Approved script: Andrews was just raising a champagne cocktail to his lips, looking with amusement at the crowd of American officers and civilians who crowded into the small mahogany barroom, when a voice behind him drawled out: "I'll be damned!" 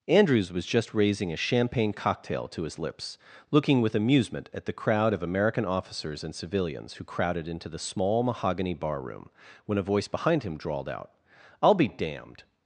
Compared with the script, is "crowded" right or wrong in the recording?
right